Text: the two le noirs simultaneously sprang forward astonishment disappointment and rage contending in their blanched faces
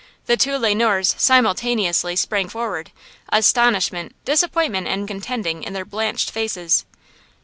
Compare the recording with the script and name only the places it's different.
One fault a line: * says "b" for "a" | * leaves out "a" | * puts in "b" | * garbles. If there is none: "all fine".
* leaves out "rage"